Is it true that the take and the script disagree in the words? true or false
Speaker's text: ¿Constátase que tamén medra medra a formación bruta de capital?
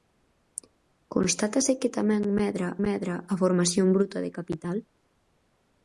false